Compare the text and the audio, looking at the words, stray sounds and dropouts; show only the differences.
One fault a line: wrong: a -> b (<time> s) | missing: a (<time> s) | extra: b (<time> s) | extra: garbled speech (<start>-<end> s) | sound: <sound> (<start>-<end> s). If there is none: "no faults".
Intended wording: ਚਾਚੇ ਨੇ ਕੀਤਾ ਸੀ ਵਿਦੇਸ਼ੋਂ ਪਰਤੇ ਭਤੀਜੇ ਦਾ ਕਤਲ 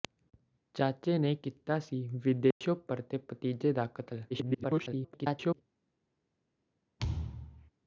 sound: dropout (2.5-2.6 s)
extra: garbled speech (4.3-5.6 s)
sound: thud (7.0-7.7 s)